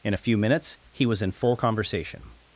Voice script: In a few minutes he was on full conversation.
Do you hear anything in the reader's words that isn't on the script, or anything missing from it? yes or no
yes